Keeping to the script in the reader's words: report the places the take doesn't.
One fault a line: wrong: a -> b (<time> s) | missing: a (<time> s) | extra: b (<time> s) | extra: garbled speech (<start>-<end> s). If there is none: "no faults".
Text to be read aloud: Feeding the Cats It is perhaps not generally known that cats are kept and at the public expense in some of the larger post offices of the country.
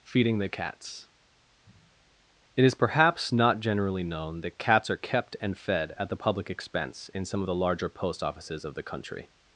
extra: fed (5.6 s)